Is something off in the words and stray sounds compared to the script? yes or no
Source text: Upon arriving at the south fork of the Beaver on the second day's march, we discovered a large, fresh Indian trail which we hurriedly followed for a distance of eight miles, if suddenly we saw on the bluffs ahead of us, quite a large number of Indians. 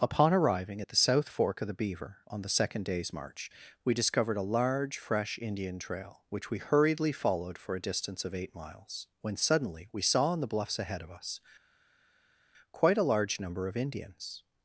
yes